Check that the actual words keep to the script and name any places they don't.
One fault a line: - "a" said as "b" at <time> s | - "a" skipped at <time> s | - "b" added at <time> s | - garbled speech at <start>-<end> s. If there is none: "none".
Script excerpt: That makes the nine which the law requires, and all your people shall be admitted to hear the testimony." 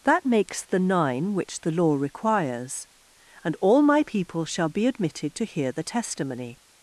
- "your" said as "my" at 3.8 s